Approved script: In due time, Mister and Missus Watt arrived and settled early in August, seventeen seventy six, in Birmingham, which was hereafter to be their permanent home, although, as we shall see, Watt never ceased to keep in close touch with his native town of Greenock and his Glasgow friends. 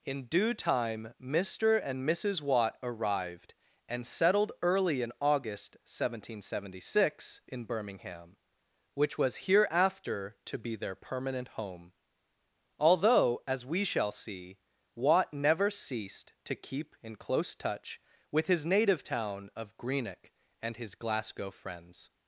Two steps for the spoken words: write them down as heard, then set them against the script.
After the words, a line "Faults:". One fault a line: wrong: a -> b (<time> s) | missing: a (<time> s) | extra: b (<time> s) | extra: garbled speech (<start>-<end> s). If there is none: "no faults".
In due time, Mister and Missus Watt arrived and settled early in August, seventeen seventy six, in Birmingham, which was hereafter to be their permanent home, although, as we shall see, Watt never ceased to keep in close touch with his native town of Greenock and his Glasgow friends.
Faults:
no faults